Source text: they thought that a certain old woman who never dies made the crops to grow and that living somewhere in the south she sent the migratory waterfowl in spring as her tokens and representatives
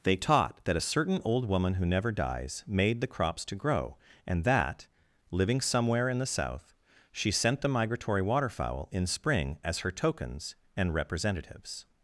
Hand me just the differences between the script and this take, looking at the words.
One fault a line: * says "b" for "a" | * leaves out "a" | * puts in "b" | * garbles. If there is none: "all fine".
* says "taught" for "thought"